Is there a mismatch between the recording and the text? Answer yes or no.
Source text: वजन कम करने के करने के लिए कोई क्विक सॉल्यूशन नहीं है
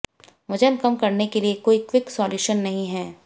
yes